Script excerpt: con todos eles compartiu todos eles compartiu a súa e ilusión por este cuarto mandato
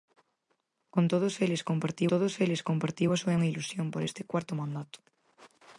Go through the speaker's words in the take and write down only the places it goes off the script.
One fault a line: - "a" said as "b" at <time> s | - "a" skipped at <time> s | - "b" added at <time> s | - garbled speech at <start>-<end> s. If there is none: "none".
none